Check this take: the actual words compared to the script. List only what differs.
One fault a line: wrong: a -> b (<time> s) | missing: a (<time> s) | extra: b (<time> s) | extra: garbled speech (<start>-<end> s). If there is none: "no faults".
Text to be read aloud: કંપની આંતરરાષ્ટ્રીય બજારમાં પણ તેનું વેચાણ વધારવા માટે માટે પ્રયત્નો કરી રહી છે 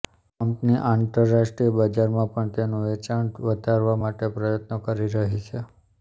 missing: માટે (4.3 s)